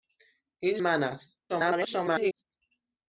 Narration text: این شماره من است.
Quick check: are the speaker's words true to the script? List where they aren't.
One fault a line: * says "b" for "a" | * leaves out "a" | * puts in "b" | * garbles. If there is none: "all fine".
* leaves out "شماره"
* garbles